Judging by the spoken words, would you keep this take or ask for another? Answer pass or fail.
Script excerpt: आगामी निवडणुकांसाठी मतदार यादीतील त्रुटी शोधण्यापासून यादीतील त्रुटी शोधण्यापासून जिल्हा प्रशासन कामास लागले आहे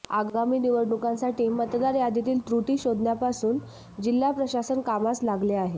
fail